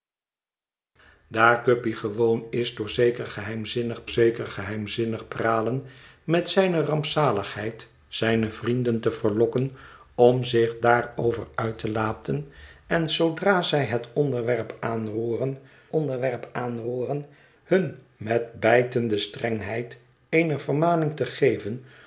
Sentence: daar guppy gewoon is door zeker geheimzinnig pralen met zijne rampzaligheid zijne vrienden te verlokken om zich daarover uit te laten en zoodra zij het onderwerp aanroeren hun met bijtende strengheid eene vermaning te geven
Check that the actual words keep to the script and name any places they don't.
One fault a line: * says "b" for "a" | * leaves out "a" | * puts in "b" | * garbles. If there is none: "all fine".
* puts in "zeker geheimzinnig"
* puts in "onderwerp aanroeren"